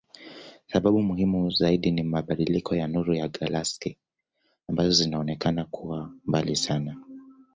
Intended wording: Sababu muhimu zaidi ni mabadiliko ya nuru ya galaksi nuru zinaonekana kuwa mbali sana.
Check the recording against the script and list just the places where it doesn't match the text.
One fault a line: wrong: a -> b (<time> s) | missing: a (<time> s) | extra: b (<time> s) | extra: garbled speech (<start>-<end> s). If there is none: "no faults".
wrong: nuru -> ambazo (4.7 s)